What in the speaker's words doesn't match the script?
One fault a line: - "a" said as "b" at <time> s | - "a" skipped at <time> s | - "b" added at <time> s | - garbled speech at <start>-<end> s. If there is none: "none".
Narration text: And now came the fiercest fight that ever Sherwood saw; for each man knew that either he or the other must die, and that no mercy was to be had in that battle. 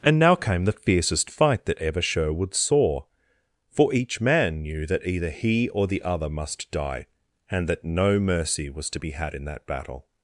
none